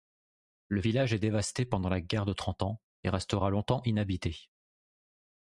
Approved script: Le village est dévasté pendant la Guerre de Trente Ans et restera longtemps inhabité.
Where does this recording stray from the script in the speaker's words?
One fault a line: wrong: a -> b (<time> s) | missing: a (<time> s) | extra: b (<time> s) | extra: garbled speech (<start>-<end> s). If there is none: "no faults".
no faults